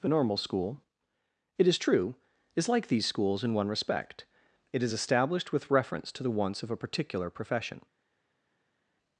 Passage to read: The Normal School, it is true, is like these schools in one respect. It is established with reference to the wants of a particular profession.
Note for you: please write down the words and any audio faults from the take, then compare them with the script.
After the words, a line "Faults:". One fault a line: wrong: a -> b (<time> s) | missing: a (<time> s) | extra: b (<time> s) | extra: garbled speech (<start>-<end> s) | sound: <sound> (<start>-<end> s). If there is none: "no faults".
The Normal School, it is true, is like these schools in one respect. It is established with reference to the wants of a particular profession.
Faults:
no faults